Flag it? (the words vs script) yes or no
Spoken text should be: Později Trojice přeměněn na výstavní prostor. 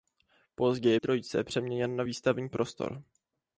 no